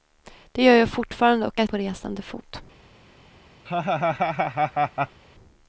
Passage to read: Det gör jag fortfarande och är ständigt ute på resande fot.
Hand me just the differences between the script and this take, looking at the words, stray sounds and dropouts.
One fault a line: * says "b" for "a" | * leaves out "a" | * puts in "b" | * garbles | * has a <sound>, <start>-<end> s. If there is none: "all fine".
* leaves out "ständigt ute"
* has a laugh, 3.7-5.2 s